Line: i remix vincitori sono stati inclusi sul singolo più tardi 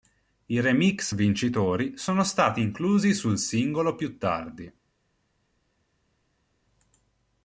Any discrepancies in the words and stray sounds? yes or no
no